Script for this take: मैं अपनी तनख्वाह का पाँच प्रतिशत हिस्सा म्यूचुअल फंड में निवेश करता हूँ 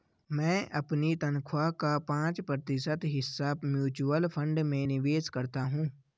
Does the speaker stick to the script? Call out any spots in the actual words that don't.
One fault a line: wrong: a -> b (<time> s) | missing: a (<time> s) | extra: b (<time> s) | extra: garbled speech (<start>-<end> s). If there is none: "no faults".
no faults